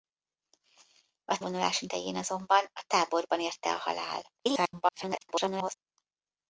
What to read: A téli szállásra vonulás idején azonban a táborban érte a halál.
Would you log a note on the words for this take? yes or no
yes